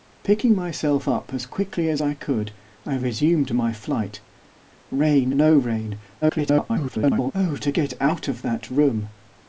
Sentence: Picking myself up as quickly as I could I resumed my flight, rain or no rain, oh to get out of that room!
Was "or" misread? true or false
true